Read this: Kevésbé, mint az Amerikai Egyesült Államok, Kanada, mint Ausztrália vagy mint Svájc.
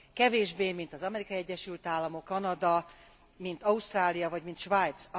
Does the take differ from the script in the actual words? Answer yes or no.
no